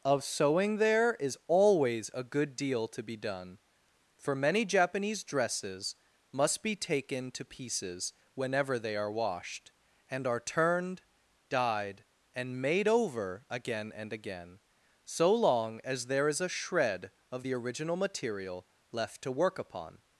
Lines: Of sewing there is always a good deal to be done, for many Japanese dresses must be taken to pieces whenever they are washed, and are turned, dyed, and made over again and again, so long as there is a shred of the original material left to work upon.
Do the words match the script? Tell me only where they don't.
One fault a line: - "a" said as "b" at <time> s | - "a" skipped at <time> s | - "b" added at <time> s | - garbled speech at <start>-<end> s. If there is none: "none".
none